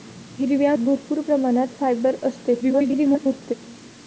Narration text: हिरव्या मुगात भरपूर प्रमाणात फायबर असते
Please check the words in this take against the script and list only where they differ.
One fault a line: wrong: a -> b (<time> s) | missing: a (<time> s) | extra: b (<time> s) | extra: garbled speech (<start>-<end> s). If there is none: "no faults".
missing: मुगात (0.7 s)
extra: garbled speech (2.6-3.5 s)